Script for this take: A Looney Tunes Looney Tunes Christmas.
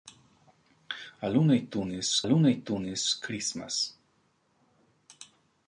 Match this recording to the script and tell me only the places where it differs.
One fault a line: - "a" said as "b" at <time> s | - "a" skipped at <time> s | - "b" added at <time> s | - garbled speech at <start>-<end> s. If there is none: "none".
none